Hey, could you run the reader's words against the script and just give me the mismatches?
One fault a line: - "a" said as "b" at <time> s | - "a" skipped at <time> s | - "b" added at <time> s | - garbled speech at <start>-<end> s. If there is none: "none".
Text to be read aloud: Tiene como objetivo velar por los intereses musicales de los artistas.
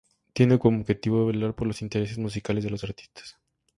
none